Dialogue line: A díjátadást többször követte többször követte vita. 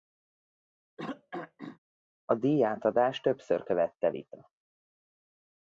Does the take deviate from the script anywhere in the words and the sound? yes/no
yes